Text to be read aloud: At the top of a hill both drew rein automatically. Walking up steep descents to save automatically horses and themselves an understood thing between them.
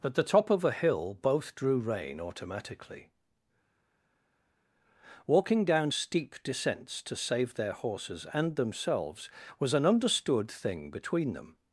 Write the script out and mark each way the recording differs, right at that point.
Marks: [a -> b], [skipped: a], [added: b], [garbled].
At the top of a hill both drew rein automatically. Walking [up -> down] steep descents to save [automatically -> their] horses and themselves [added: was] an understood thing between them.